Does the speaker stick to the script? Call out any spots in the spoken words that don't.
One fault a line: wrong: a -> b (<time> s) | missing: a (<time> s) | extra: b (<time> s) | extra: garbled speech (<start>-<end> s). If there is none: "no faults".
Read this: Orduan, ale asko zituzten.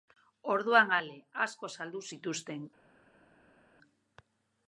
extra: saldu (1.8 s)